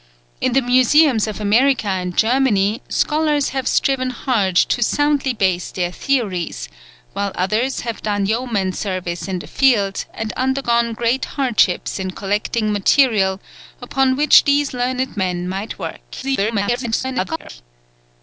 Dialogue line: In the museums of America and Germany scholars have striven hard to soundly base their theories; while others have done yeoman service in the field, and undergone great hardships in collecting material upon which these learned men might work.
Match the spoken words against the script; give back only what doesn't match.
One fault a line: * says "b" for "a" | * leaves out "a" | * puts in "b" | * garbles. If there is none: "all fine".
* garbles